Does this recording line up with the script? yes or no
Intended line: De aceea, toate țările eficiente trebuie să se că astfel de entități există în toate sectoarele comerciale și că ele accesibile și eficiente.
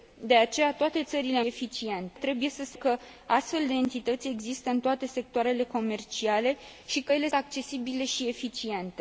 yes